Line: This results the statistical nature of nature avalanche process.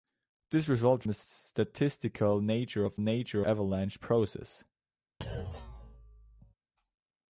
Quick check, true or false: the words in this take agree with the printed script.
true